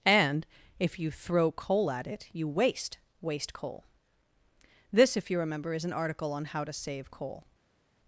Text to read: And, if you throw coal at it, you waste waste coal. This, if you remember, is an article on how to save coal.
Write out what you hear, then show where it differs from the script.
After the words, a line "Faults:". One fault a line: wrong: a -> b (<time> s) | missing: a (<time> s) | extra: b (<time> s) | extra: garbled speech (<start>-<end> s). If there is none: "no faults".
And, if you throw coal at it, you waste waste coal. This, if you remember, is an article on how to save coal.
Faults:
no faults